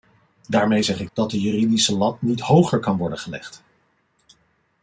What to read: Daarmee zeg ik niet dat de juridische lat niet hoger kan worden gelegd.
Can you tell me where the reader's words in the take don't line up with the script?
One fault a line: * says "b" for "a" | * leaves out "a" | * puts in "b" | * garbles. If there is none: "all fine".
* leaves out "niet"